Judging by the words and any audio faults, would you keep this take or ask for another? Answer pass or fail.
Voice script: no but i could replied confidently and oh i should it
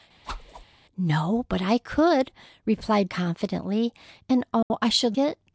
fail